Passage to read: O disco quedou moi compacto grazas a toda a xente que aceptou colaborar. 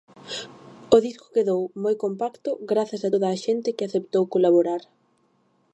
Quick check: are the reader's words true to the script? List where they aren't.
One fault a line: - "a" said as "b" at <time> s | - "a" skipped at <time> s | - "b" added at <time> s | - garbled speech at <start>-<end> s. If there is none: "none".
none